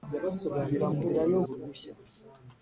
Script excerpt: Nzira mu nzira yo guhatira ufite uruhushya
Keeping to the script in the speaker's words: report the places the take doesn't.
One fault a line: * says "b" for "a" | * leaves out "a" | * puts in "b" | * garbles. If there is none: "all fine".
* leaves out "mu"
* leaves out "guhatira ufite"